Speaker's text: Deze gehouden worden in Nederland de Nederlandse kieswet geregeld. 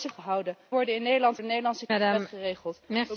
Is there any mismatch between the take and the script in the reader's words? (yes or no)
no